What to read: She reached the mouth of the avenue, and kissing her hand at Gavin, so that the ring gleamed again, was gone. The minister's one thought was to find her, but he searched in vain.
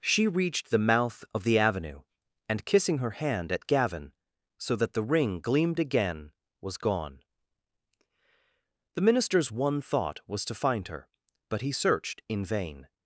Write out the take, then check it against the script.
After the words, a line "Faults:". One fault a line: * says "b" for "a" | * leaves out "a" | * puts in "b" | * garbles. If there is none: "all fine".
She reached the mouth of the avenue, and kissing her hand at Gavin, so that the ring gleamed again, was gone. The minister's one thought was to find her, but he searched in vain.
Faults:
all fine